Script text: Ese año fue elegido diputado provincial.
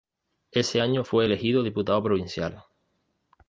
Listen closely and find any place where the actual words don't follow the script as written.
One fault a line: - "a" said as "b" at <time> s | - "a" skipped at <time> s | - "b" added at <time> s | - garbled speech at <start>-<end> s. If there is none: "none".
none